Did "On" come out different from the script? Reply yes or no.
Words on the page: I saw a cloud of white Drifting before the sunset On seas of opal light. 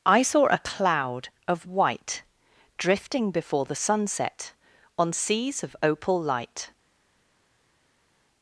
no